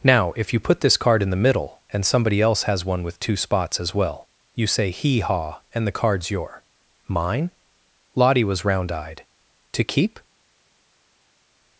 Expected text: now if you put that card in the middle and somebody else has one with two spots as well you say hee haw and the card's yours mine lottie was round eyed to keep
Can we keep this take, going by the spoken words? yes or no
no